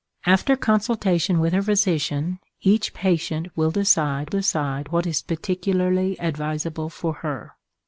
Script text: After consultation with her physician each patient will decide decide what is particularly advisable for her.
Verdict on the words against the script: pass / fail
pass